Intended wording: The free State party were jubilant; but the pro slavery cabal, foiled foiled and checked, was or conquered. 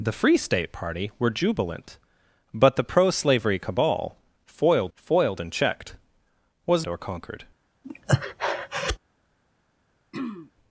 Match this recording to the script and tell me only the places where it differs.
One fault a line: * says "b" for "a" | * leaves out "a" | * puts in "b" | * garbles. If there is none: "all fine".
all fine